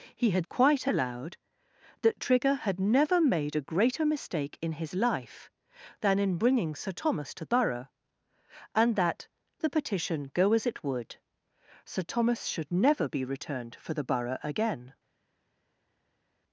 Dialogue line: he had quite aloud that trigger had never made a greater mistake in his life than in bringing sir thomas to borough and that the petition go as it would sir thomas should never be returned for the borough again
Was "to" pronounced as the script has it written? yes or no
yes